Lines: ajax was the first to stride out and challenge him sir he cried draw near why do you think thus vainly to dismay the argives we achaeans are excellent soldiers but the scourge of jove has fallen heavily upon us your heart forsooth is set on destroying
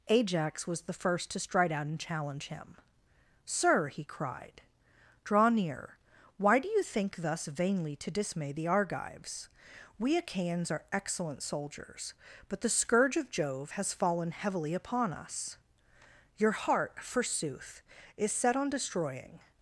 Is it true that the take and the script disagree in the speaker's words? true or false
false